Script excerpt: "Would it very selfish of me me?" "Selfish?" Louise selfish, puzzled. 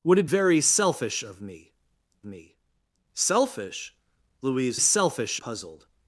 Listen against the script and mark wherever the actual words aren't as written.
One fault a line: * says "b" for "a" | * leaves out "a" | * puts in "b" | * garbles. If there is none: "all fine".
all fine